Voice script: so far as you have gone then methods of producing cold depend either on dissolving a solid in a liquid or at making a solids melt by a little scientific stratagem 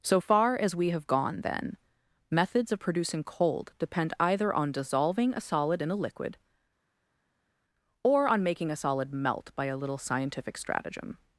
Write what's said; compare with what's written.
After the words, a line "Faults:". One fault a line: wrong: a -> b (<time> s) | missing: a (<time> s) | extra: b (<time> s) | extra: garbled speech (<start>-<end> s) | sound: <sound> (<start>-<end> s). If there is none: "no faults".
so far as we have gone then methods of producing cold depend either on dissolving a solid in a liquid or on making a solid melt by a little scientific stratagem
Faults:
wrong: you -> we (0.8 s)
wrong: at -> on (8.3 s)
wrong: solids -> solid (8.8 s)